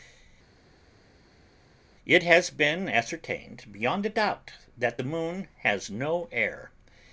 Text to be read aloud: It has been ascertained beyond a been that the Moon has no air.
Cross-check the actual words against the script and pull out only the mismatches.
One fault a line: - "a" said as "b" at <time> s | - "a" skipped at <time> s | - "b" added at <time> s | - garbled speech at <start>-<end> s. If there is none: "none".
- "been" said as "doubt" at 4.1 s